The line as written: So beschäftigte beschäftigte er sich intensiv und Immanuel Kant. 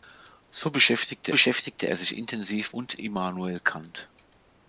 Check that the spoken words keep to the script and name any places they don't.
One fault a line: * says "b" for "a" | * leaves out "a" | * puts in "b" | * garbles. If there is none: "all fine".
all fine